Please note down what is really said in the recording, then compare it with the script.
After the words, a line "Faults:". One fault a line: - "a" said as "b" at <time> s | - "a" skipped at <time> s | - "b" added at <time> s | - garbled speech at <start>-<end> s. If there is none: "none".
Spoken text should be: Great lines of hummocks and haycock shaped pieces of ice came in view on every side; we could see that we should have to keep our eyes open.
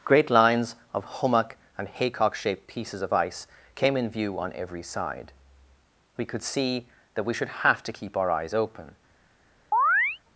Great lines of hummock and haycock shaped pieces of ice came in view on every side; we could see that we should have to keep our eyes open.
Faults:
- "hummocks" said as "hummock" at 1.1 s